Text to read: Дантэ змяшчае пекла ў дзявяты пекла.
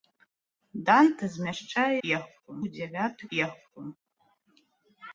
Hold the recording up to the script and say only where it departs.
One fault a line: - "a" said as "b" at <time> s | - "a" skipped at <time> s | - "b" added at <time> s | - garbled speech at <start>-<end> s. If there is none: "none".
none